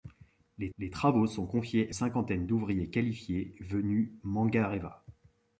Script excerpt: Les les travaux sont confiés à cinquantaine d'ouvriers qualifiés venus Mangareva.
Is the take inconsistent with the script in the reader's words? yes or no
no